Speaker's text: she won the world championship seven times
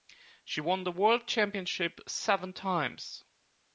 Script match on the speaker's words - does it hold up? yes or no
yes